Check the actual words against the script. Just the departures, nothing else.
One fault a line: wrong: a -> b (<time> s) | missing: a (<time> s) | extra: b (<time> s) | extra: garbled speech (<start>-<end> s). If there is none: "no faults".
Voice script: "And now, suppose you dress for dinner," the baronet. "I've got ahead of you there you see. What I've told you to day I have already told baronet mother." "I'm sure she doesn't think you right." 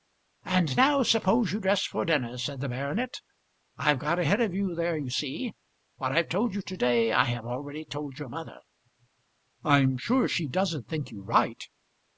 extra: said (2.4 s)
wrong: baronet -> your (8.2 s)